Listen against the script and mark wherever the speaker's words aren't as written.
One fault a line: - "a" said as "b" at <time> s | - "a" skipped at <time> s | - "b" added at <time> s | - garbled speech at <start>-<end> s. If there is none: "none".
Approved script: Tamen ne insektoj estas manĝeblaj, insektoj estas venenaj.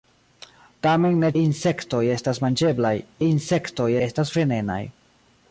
none